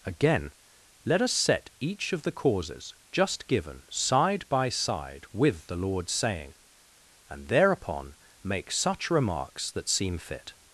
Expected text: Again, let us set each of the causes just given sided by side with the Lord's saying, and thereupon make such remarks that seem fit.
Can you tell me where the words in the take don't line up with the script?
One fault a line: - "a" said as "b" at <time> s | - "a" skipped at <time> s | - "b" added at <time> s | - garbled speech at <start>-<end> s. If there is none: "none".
- "sided" said as "side" at 3.9 s